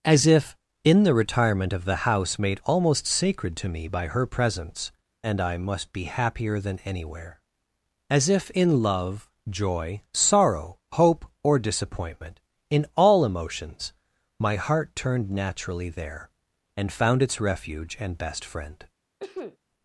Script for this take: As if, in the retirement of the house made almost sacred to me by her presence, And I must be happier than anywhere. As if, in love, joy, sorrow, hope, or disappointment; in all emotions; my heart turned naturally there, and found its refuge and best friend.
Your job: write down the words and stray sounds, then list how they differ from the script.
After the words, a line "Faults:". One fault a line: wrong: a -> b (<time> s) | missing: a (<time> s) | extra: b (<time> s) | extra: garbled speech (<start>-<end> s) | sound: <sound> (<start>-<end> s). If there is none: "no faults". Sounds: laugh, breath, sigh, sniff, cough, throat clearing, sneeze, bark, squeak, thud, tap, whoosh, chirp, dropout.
As if, in the retirement of the house made almost sacred to me by her presence, And I must be happier than anywhere. As if, in love, joy, sorrow, hope, or disappointment; in all emotions; my heart turned naturally there, and found its refuge and best friend.
Faults:
sound: sneeze (19.2-19.6 s)